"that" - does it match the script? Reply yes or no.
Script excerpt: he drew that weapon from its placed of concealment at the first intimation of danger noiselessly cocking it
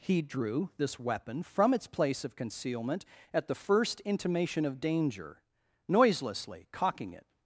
no